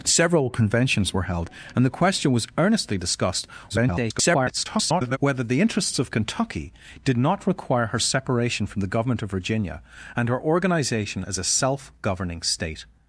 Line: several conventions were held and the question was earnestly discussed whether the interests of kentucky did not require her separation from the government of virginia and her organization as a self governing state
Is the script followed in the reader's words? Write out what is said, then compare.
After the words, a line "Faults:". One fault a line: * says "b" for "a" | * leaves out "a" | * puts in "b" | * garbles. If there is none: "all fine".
several conventions were held and the question was earnestly discussed [garbled] whether the interests of kentucky did not require her separation from the government of virginia and her organization as a self governing state
Faults:
* garbles